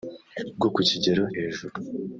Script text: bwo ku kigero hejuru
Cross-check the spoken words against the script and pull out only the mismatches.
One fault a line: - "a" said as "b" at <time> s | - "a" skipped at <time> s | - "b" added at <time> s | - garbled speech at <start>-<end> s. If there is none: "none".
none